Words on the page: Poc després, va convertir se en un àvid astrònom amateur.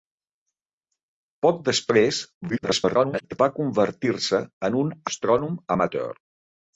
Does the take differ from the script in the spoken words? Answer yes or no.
yes